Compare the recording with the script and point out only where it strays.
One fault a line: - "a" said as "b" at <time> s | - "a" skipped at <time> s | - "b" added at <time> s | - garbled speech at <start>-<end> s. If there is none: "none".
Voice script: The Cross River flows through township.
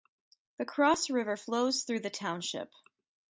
- "the" added at 2.0 s